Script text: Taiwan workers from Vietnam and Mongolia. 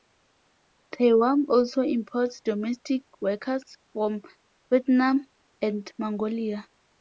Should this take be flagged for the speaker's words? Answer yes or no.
yes